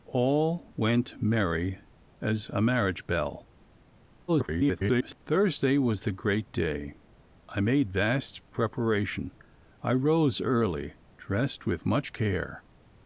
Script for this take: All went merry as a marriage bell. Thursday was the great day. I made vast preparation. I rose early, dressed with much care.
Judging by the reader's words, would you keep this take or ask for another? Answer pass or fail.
fail